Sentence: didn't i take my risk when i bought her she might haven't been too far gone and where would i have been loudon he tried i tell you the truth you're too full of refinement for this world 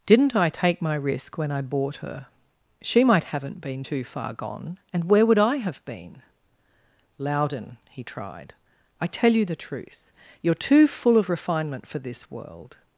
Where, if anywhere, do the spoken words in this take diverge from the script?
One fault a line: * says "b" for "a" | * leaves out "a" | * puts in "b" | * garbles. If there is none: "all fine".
all fine